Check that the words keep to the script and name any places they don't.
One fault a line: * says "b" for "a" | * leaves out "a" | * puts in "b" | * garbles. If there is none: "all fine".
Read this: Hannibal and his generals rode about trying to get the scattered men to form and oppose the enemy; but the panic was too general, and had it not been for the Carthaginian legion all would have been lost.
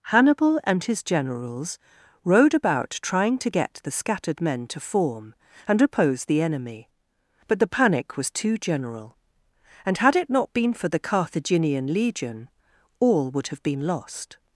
all fine